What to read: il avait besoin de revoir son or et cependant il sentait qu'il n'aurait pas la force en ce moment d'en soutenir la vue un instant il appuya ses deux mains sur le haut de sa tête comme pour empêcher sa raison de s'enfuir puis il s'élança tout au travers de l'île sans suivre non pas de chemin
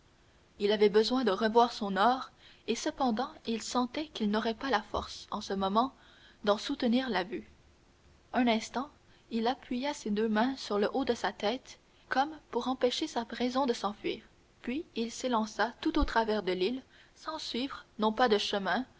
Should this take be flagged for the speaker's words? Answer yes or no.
no